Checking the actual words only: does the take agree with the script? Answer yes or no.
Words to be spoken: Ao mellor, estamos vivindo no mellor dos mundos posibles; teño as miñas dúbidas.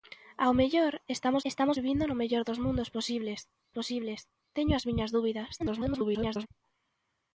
no